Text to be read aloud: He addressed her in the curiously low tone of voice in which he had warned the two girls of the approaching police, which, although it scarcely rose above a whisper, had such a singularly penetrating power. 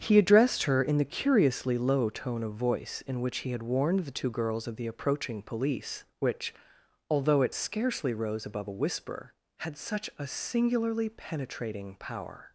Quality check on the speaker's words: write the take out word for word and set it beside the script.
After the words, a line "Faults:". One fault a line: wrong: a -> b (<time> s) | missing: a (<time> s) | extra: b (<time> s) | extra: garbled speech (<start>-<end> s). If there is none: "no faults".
He addressed her in the curiously low tone of voice in which he had warned the two girls of the approaching police, which, although it scarcely rose above a whisper, had such a singularly penetrating power.
Faults:
no faults